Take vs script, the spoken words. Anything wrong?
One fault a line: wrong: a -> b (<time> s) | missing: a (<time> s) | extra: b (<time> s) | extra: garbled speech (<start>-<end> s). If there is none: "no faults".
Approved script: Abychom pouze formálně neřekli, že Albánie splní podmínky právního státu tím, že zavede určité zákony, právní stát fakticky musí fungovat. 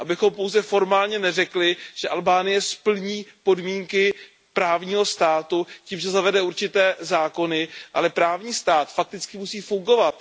extra: ale (7.9 s)